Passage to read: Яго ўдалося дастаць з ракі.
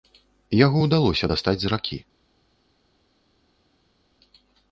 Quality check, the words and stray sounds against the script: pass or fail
pass